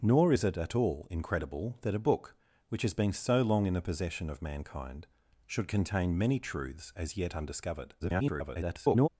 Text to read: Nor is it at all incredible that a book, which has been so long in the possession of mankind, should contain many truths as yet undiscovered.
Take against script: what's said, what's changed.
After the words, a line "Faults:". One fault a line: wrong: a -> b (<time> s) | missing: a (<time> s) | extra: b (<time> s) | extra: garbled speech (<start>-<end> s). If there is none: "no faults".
Nor is it at all incredible that a book, which has been so long in the possession of mankind, should contain many truths as yet undiscovered. [garbled]
Faults:
extra: garbled speech (8.0-9.1 s)